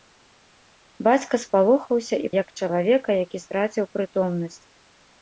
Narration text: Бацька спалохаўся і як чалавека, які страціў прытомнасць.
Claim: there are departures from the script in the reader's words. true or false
false